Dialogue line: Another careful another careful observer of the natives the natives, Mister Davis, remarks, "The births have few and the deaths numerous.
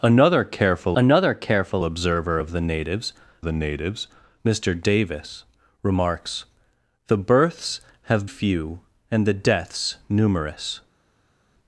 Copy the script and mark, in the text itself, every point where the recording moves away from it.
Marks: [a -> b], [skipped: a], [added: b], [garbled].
Another careful another careful observer of the natives the natives, Mister Davis, remarks, "The births have few and the deaths numerous.